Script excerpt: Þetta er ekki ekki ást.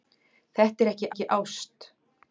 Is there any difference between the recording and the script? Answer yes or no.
no